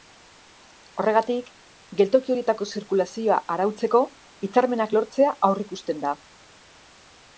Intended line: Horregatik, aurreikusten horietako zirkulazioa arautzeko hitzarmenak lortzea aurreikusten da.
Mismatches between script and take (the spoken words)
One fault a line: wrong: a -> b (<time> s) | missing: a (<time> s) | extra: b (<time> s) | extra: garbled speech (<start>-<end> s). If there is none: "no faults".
wrong: aurreikusten -> geltoki (2.0 s)